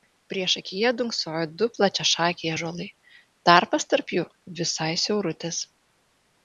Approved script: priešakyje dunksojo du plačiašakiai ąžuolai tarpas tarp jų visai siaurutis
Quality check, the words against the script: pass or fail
pass